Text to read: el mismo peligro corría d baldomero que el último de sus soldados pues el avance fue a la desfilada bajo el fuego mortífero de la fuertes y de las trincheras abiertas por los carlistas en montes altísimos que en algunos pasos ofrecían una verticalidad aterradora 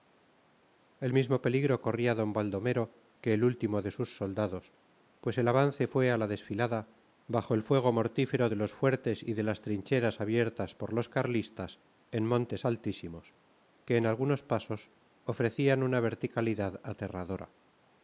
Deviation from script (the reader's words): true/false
true